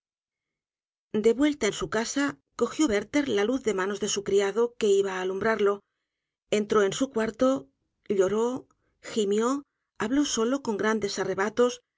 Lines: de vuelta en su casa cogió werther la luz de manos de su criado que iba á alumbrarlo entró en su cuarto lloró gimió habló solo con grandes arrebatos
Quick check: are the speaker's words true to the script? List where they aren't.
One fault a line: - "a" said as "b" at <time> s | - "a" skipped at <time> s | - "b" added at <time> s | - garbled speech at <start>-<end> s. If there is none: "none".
none